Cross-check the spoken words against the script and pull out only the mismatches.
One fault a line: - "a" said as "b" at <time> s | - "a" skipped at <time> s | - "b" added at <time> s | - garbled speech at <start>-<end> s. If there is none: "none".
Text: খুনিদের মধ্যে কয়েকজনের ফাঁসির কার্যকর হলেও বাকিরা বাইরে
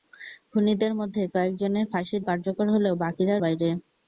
none